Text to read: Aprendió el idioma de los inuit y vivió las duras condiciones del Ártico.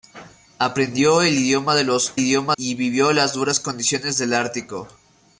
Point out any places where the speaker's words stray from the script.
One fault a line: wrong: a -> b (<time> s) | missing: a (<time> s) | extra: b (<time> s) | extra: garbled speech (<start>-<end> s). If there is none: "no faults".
wrong: inuit -> idioma (2.2 s)